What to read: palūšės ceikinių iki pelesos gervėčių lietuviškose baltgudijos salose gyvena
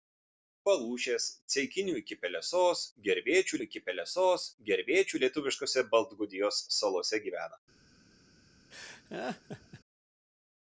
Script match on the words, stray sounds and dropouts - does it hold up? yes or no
no